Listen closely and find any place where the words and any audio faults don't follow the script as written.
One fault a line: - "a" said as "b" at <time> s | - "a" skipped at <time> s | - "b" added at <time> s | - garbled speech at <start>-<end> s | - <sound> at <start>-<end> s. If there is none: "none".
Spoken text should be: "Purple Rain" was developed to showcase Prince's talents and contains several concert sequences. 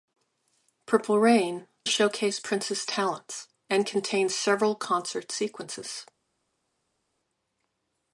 - "was developed to" skipped at 1.7 s